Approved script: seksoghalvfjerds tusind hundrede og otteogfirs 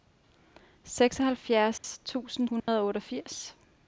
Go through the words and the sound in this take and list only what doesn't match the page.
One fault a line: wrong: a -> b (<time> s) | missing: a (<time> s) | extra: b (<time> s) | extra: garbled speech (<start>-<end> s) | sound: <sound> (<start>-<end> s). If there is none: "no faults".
sound: dropout (1.8-1.8 s)
sound: dropout (2.6-2.7 s)